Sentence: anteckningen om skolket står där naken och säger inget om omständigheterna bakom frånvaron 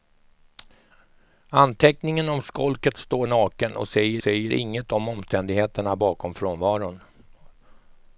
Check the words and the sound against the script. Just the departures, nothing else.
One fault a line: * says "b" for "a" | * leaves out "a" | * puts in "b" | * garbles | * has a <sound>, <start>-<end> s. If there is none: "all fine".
* leaves out "där"
* puts in "säger"